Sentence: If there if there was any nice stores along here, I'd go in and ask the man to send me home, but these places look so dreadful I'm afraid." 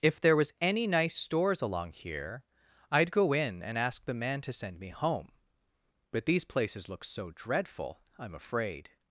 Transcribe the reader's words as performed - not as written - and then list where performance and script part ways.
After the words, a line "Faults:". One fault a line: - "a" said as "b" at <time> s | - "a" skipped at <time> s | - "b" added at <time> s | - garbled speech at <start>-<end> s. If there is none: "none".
If there was any nice stores along here, I'd go in and ask the man to send me home, but these places look so dreadful I'm afraid."
Faults:
- "if there" skipped at 0.3 s